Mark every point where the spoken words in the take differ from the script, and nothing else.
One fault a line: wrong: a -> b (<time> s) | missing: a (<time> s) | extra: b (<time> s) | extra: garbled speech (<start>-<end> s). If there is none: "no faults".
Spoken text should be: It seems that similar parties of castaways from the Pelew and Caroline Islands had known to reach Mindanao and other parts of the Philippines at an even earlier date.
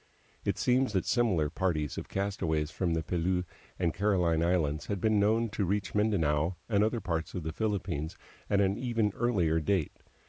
extra: been (5.0 s)